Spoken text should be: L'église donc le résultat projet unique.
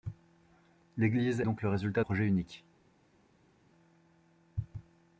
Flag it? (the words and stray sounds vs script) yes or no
no